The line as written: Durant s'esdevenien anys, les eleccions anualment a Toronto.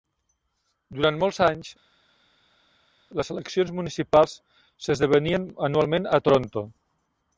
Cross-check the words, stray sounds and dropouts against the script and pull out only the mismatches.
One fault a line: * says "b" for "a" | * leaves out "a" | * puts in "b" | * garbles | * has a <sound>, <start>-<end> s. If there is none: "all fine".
* says "molts" for "s'esdevenien"
* puts in "municipals s'esdevenien"